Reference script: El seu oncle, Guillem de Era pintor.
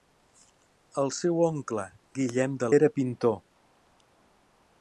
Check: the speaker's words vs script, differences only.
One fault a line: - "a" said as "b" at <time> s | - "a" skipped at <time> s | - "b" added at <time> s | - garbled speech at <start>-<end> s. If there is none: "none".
none